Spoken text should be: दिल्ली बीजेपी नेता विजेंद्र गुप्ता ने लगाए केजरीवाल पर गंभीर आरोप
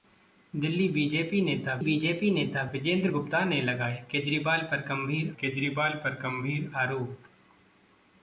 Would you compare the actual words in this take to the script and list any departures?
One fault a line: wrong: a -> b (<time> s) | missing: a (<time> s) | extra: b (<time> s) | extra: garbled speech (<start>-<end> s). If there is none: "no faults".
extra: बीजेपी नेता (1.8 s)
extra: केजरीवाल पर गंभीर (5.4 s)